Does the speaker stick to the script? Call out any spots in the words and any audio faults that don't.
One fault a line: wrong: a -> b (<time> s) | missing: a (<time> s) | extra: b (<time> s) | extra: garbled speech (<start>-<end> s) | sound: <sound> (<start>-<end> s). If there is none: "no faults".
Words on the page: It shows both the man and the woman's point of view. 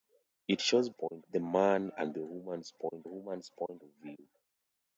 wrong: both -> point (0.9 s)
extra: woman's point (3.0 s)